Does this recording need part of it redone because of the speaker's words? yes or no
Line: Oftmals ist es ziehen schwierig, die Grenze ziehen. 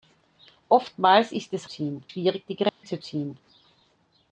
no